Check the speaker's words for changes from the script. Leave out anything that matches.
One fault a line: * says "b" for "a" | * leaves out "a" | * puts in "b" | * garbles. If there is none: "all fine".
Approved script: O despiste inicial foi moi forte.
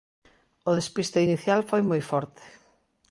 all fine